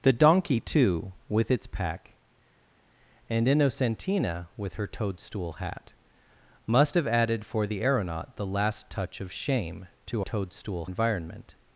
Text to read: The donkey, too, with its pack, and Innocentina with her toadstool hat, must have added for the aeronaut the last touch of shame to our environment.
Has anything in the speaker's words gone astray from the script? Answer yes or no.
yes